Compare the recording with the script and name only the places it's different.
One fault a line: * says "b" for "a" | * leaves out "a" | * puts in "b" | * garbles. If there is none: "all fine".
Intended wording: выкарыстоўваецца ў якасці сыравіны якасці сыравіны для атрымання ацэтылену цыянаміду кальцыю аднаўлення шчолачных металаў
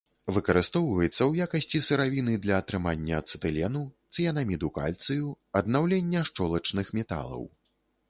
* leaves out "якасці сыравіны"